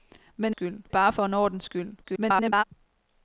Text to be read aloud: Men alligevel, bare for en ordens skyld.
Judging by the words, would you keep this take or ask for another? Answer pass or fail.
fail